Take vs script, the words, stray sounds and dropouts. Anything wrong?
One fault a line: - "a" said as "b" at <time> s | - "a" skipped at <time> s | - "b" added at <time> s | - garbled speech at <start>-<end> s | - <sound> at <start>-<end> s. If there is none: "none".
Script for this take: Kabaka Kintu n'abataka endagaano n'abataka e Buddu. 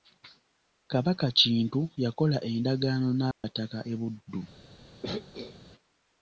- "n'abataka" said as "yakola" at 2.0 s
- dropout at 3.3-3.4 s
- throat clearing at 5.0-5.6 s